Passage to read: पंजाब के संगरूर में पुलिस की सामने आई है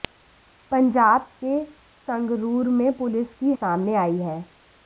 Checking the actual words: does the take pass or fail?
pass